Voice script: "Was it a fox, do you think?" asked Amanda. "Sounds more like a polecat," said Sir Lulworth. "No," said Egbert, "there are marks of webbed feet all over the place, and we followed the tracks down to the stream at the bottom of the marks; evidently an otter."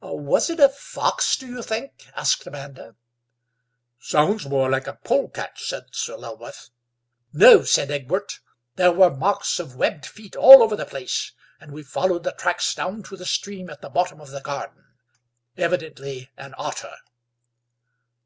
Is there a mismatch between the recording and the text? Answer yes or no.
yes